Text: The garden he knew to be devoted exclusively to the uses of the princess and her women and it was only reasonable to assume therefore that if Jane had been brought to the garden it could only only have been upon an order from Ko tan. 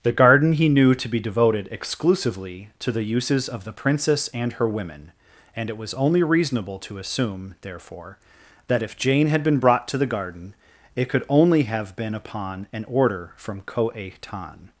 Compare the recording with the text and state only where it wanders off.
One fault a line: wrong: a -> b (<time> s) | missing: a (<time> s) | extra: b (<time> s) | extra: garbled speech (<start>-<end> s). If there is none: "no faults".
missing: only (11.6 s)